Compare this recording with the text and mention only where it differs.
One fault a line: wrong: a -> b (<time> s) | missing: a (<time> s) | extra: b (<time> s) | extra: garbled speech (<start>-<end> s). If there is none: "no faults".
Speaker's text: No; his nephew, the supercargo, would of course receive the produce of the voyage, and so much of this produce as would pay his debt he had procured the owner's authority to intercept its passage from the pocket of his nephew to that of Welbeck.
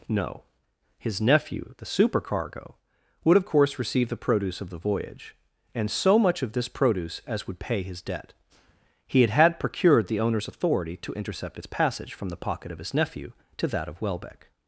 extra: had (9.3 s)